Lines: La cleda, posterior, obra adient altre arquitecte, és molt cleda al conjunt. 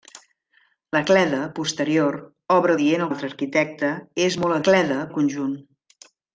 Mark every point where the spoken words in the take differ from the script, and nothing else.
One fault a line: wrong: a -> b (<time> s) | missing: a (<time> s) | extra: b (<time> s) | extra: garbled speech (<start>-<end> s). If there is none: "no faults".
no faults